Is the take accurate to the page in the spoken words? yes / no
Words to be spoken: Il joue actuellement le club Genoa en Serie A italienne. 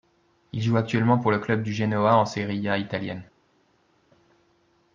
no